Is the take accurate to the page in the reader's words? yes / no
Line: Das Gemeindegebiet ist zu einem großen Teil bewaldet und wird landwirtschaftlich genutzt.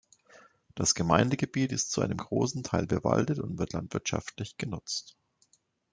yes